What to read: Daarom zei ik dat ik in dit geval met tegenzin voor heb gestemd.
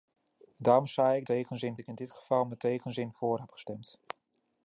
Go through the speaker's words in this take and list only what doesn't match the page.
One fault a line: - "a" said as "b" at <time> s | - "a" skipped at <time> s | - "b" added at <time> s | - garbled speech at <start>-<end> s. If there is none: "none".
- "dat" said as "tegenzin" at 1.2 s